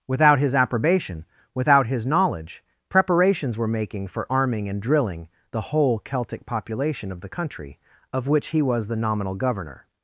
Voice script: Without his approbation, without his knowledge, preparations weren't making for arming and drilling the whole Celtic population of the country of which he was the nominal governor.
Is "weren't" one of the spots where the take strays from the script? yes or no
yes